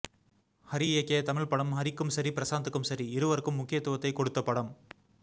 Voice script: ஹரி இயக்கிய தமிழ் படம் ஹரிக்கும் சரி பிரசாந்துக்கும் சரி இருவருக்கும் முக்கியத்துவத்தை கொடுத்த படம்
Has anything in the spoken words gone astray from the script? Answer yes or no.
no